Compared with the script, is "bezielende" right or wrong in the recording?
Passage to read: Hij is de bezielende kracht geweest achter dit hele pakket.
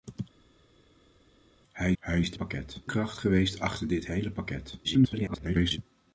wrong